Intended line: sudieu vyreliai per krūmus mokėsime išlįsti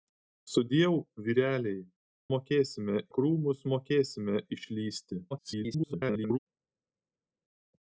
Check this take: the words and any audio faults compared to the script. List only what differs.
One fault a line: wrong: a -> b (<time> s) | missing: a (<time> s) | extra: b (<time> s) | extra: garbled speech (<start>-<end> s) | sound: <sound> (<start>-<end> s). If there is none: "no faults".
wrong: per -> mokėsime (2.3 s)
extra: garbled speech (5.3-6.4 s)